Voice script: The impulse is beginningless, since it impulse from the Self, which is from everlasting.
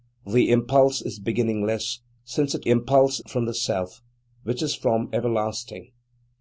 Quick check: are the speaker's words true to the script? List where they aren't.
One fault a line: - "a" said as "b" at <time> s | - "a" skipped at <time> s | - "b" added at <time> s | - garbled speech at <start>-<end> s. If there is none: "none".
none